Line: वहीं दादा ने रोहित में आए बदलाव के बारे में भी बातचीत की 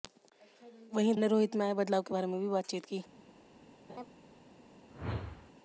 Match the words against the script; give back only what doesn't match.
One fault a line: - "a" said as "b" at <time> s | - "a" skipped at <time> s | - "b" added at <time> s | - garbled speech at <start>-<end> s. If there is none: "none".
- "दादा" skipped at 1.1 s